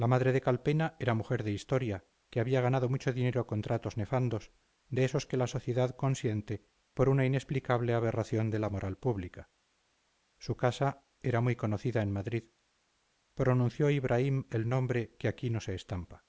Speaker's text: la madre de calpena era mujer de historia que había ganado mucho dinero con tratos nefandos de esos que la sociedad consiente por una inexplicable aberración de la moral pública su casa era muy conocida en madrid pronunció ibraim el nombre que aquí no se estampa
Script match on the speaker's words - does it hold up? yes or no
yes